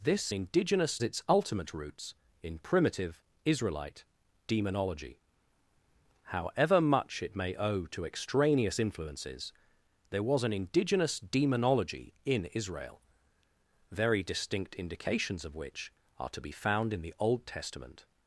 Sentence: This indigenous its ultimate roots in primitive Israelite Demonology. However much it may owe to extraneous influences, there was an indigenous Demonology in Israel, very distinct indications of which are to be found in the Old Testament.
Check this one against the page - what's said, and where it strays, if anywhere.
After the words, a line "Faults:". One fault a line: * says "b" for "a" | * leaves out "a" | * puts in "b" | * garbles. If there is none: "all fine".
This indigenous its ultimate roots in primitive Israelite Demonology. However much it may owe to extraneous influences, there was an indigenous Demonology in Israel, very distinct indications of which are to be found in the Old Testament.
Faults:
all fine